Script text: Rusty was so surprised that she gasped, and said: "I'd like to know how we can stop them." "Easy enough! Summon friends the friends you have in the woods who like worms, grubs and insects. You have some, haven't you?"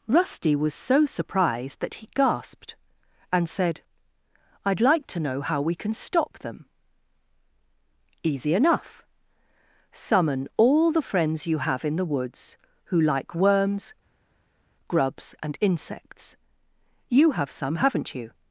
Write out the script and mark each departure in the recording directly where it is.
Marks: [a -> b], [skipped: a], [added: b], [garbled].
Rusty was so surprised that [she -> he] gasped, and said: "I'd like to know how we can stop them." "Easy enough! Summon [friends -> all] the friends you have in the woods who like worms, grubs and insects. You have some, haven't you?"